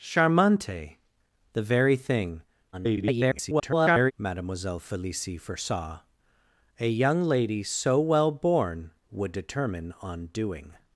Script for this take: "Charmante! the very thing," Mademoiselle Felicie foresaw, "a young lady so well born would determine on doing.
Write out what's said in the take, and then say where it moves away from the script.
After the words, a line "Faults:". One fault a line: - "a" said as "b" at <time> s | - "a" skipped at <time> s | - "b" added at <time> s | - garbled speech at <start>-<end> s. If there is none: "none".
"Charmante! the very thing," [garbled] Mademoiselle Felicie foresaw, "a young lady so well born would determine on doing.
Faults:
- garbled speech at 2.7-4.1 s